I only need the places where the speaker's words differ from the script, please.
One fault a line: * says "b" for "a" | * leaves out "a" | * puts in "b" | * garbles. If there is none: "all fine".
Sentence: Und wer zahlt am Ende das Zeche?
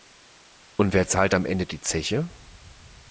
* says "die" for "das"